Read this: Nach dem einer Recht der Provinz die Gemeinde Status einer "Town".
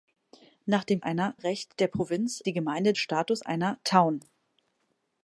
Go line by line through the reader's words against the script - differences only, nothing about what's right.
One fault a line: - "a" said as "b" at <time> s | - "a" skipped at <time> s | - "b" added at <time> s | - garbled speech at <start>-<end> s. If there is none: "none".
none